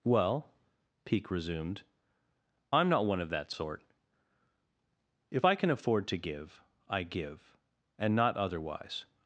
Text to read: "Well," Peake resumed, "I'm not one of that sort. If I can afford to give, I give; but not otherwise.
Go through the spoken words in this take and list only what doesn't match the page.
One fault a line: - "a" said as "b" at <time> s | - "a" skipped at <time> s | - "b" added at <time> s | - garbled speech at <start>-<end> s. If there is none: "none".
- "but" said as "and" at 8.0 s